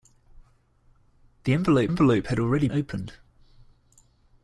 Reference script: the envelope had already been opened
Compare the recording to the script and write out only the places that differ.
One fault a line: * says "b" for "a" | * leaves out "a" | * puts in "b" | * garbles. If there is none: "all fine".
* puts in "envelope"
* leaves out "been"